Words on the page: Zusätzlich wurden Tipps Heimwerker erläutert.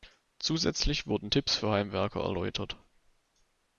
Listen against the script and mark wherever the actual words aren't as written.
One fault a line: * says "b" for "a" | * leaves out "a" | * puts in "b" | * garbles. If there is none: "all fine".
* puts in "für"